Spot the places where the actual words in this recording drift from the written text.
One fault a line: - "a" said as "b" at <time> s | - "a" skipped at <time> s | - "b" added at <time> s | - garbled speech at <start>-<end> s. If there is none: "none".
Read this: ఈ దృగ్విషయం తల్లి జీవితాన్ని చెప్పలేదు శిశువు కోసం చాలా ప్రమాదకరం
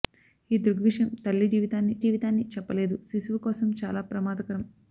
- "జీవితాన్ని" added at 2.0 s